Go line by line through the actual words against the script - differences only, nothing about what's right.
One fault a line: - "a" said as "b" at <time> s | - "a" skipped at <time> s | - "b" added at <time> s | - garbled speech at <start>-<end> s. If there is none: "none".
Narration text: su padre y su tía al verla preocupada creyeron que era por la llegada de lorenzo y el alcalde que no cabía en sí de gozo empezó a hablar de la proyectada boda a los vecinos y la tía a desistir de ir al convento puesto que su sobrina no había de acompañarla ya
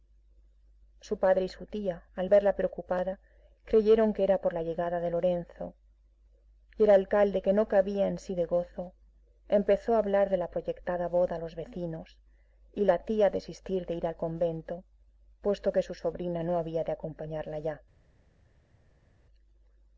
none